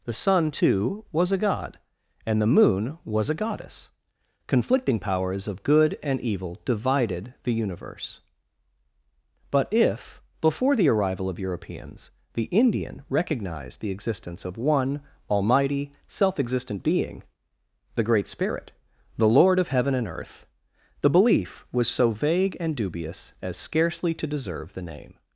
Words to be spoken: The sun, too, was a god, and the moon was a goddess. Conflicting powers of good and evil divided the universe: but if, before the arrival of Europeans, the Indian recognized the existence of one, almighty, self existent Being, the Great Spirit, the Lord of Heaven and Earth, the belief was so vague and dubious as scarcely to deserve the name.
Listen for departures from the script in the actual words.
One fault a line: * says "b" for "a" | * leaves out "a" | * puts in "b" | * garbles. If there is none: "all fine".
all fine